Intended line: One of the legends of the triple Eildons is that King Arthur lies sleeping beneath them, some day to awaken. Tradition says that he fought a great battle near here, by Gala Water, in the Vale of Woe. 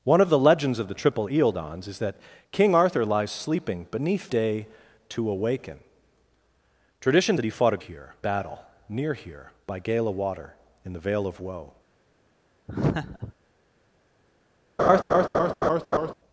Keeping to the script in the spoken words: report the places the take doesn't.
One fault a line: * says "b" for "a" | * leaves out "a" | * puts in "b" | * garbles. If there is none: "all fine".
* leaves out "them some"
* leaves out "says"
* says "here" for "great"